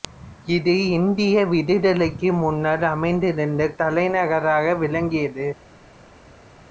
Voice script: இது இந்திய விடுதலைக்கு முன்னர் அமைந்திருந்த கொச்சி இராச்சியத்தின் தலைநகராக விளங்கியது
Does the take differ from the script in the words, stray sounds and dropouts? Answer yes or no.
yes